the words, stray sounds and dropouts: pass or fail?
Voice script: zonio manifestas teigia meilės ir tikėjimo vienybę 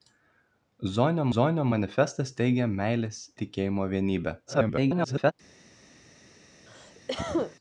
fail